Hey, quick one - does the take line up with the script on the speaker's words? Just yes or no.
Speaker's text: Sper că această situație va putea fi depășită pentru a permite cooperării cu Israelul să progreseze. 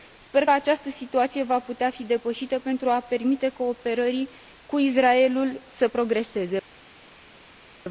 no